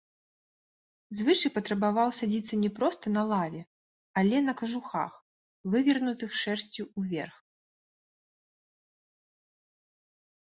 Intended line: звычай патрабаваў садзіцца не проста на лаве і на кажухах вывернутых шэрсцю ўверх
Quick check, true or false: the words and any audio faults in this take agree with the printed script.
false